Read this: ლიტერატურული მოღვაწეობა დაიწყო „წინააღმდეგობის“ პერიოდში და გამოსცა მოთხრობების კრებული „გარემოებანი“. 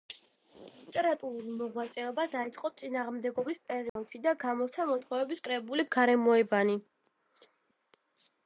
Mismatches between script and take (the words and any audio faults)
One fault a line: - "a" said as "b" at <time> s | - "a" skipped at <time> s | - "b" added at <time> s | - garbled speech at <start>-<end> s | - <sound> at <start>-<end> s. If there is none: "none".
- dropout at 3.9-4.0 s